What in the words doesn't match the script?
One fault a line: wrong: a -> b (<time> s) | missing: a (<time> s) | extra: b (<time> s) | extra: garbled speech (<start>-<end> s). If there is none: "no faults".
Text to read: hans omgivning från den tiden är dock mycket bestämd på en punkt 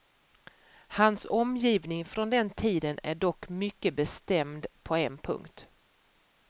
no faults